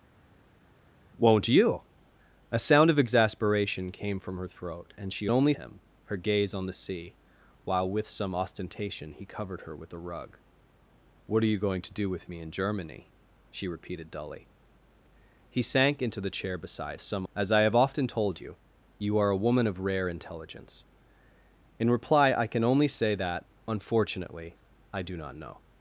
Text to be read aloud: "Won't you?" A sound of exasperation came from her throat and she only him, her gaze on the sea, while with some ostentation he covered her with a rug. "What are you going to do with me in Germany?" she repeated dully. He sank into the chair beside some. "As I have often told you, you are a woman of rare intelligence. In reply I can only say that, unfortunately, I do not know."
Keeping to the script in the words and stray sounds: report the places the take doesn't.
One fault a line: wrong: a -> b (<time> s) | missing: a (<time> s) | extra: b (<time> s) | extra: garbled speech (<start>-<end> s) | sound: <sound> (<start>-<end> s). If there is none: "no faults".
no faults